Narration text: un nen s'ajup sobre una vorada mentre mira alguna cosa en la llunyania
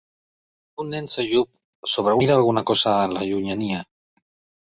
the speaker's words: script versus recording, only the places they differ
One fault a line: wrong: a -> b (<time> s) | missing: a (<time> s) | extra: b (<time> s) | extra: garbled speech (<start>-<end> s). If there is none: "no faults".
missing: una vorada mentre (2.1 s)